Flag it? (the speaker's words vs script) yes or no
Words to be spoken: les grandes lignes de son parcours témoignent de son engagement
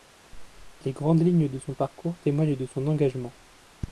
no